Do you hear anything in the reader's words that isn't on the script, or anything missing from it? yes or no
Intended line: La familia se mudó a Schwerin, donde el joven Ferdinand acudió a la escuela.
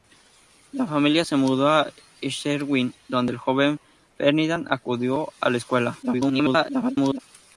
yes